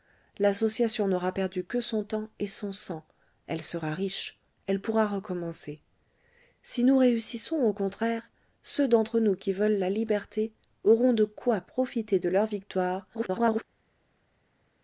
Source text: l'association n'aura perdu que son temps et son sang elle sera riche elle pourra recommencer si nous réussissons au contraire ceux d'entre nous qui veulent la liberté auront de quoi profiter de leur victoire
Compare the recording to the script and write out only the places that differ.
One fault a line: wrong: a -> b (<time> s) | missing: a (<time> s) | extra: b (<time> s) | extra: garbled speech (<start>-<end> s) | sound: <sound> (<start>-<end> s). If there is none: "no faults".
extra: garbled speech (13.1-13.6 s)